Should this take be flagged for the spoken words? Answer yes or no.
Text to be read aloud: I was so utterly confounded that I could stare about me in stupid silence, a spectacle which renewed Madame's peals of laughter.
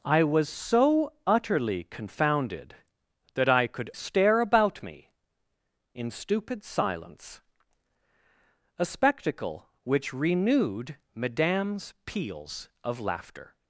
no